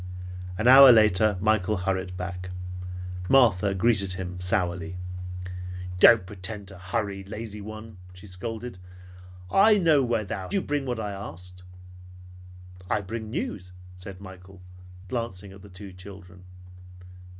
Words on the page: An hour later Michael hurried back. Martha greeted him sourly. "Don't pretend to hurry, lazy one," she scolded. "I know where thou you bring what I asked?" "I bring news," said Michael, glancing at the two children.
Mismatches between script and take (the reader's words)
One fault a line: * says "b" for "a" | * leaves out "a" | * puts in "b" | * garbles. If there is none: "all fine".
all fine